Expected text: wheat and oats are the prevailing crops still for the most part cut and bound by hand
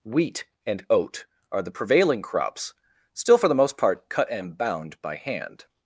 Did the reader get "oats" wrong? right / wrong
wrong